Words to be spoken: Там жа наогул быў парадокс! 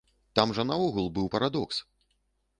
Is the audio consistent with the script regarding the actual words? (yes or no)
yes